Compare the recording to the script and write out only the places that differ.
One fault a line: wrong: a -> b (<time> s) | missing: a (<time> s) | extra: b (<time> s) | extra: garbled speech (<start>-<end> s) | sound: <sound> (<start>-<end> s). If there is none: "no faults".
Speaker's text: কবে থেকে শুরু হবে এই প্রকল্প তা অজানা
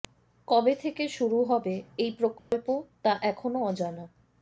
sound: dropout (2.4-2.5 s)
extra: এখনও (3.2 s)